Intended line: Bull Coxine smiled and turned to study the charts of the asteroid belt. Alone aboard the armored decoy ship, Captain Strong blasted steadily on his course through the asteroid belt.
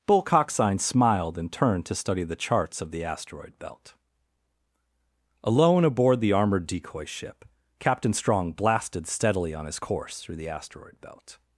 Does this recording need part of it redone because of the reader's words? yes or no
no